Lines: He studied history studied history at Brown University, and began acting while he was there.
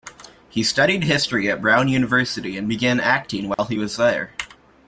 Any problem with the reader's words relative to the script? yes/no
yes